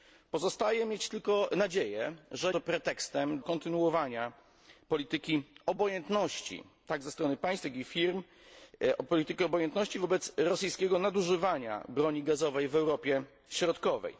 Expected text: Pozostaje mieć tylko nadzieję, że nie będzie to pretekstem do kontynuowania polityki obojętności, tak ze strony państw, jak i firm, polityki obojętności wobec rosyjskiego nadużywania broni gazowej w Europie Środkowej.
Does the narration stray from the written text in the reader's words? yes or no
yes